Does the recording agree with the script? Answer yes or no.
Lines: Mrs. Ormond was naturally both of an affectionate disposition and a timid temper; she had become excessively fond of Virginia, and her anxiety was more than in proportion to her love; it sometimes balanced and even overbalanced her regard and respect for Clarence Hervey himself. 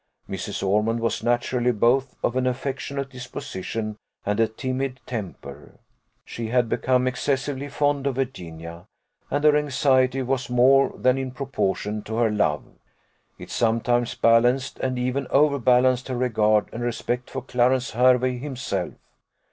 yes